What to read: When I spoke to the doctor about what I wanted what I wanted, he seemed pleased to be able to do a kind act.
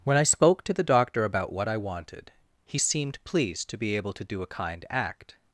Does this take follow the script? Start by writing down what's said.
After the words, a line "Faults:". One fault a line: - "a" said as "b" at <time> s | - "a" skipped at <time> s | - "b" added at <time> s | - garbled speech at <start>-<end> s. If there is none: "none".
When I spoke to the doctor about what I wanted, he seemed pleased to be able to do a kind act.
Faults:
- "what I wanted" skipped at 2.3 s